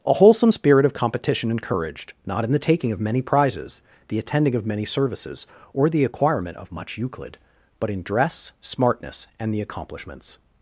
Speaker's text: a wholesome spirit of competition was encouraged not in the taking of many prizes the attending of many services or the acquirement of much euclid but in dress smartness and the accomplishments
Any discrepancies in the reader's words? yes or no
yes